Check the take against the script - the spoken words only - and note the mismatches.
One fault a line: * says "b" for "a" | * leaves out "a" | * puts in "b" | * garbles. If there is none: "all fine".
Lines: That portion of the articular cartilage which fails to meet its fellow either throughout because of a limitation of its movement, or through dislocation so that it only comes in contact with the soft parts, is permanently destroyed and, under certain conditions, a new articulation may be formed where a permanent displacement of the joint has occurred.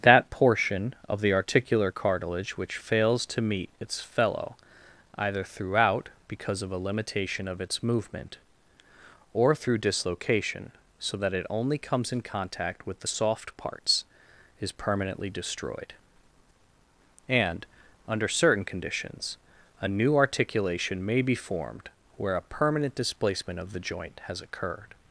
all fine